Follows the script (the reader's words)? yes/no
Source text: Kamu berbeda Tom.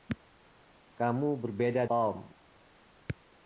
yes